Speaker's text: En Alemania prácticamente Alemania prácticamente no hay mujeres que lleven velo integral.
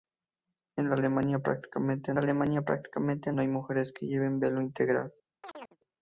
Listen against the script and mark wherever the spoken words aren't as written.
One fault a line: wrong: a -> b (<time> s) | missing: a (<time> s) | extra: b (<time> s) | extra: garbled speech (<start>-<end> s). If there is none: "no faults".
no faults